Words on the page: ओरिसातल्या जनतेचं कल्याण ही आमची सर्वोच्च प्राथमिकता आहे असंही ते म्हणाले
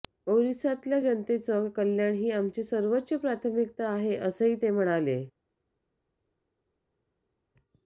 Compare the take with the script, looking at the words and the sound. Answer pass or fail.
pass